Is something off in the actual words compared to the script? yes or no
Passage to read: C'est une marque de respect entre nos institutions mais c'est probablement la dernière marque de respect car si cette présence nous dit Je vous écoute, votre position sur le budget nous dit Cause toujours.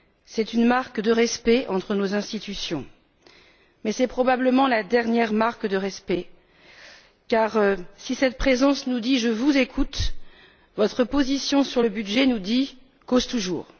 no